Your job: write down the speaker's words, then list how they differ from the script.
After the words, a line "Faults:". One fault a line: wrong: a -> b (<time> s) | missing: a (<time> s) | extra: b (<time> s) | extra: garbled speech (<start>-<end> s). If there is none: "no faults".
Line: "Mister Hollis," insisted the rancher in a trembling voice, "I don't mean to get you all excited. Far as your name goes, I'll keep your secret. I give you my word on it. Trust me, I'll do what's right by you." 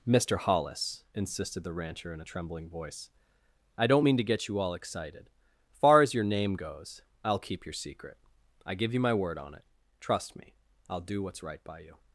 "Mister Hollis," insisted the rancher in a trembling voice, "I don't mean to get you all excited. Far as your name goes, I'll keep your secret. I give you my word on it. Trust me, I'll do what's right by you."
Faults:
no faults